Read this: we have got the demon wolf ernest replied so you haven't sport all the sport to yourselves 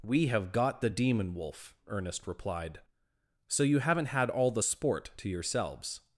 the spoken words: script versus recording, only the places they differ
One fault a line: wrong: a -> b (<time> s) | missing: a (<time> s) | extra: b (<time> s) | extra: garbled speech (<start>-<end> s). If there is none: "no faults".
wrong: sport -> had (4.1 s)